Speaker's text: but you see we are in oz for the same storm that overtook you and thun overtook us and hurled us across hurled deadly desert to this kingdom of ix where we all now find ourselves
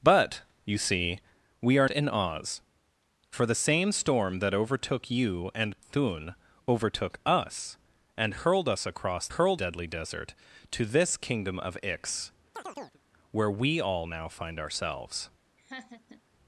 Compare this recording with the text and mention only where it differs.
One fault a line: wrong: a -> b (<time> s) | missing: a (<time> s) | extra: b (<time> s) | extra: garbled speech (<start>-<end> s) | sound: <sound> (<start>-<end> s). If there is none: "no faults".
sound: chirp (12.5-13.0 s)
sound: laugh (15.6-16.2 s)